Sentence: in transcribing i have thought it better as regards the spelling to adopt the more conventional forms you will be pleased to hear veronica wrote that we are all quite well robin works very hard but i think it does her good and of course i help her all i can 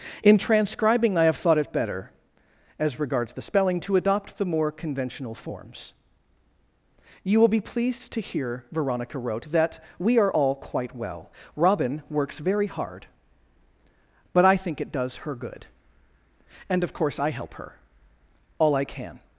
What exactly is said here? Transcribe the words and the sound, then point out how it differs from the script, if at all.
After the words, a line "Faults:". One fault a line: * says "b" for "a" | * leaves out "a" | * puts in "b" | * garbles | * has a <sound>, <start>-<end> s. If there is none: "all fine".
in transcribing i have thought it better as regards the spelling to adopt the more conventional forms you will be pleased to hear veronica wrote that we are all quite well robin works very hard but i think it does her good and of course i help her all i can
Faults:
all fine